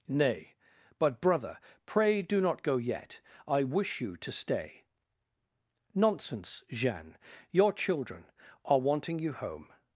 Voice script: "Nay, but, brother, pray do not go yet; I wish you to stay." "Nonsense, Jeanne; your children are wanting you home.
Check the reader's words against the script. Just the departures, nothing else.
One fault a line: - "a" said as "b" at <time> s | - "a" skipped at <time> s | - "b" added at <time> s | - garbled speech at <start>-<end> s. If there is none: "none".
none